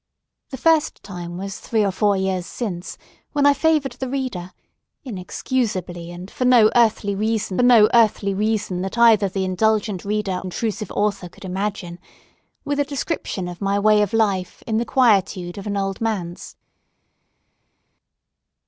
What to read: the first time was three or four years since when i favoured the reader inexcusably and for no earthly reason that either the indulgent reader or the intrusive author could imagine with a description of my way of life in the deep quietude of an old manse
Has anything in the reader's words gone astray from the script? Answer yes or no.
yes